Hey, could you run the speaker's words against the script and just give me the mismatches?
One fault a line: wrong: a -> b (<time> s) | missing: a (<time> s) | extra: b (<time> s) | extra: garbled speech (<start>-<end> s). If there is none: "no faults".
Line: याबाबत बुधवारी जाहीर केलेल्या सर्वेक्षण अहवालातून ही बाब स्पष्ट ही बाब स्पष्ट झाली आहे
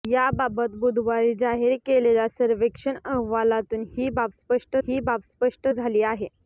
no faults